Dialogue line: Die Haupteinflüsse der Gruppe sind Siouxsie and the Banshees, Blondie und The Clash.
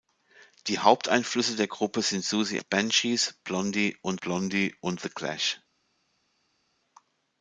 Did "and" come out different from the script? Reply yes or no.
yes